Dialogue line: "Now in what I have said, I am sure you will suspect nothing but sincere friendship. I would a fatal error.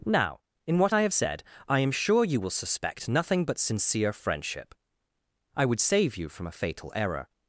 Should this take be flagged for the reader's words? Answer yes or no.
yes